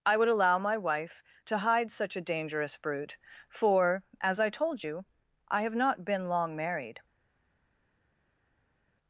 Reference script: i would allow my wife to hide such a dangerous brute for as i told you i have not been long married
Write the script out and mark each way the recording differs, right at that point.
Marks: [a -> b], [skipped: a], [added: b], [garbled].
i would allow my wife to hide such a dangerous brute for as i told you i have not been long married